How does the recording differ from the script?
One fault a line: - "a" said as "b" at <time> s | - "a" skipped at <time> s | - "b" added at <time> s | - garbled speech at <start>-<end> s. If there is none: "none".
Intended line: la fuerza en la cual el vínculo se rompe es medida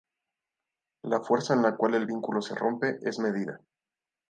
none